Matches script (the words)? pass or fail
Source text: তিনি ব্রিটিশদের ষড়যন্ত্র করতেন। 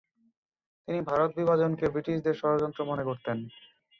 fail